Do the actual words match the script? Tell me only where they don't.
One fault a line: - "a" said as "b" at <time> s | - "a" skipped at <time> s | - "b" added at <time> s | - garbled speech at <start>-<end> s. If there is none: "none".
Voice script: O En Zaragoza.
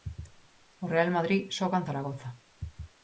- "Real Madrid xoga" added at 0.9 s